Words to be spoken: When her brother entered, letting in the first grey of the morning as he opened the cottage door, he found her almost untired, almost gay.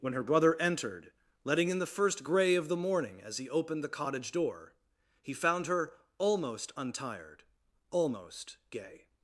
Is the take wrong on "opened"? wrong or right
right